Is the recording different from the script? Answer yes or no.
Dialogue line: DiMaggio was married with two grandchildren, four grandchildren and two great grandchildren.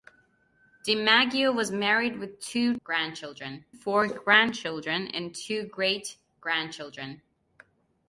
no